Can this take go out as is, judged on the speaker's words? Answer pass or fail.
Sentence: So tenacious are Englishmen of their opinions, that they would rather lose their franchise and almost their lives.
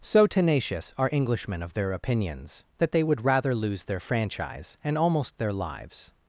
pass